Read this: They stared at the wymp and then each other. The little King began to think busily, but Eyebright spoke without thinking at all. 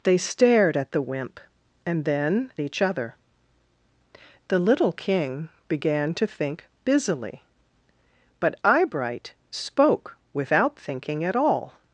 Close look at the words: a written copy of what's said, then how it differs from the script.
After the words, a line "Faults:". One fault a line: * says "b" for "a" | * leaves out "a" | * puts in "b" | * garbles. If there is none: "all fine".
They stared at the wymp and then each other. The little King began to think busily, but Eyebright spoke without thinking at all.
Faults:
all fine